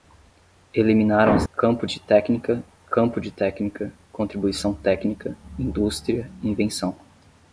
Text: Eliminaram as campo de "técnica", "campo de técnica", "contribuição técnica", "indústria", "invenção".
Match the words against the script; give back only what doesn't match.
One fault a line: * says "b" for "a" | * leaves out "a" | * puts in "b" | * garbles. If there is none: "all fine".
all fine